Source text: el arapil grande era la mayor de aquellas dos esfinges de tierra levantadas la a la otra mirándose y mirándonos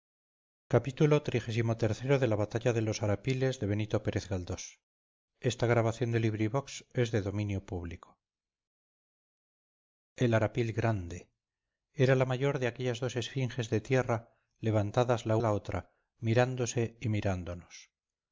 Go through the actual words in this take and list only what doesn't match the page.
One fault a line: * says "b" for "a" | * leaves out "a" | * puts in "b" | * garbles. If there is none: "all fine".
all fine